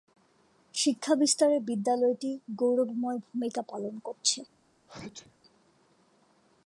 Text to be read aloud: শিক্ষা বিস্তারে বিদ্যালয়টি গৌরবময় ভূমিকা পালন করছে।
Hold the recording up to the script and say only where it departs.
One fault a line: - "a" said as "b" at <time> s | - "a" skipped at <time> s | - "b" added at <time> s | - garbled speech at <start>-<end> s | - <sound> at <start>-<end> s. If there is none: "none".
- sneeze at 4.9-5.4 s